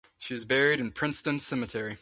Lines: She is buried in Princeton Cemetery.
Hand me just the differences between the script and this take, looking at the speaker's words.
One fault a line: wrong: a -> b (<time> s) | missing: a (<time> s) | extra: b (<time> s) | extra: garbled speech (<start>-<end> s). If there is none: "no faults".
no faults